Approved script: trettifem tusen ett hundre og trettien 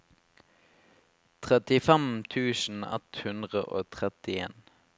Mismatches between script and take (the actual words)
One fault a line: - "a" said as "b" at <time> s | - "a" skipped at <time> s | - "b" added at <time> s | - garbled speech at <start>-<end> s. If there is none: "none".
none